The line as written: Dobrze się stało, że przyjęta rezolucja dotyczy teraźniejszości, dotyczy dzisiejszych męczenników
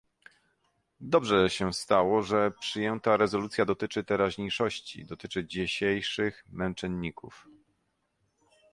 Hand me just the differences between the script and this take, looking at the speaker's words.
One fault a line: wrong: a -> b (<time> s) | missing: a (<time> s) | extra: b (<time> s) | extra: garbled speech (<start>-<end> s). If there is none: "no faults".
no faults